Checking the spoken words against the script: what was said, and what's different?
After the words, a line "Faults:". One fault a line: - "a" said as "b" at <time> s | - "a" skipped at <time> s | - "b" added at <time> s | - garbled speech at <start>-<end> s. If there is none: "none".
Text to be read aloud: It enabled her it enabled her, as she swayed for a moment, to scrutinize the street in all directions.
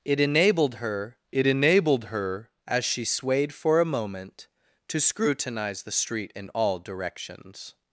It enabled her it enabled her, as she swayed for a moment, to scrutinize the street in all directions.
Faults:
none